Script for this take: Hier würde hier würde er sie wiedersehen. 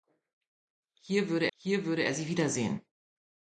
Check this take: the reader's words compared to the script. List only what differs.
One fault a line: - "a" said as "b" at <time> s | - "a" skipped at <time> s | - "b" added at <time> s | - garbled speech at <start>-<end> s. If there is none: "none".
none